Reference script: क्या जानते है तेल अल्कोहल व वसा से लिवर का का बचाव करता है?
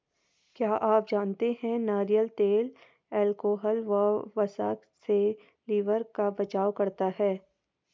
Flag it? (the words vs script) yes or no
yes